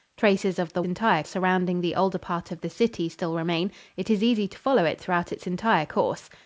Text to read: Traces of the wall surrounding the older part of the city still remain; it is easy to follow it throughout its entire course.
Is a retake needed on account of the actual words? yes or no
yes